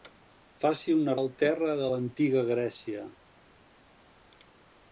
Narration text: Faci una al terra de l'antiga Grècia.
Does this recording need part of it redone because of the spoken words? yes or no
no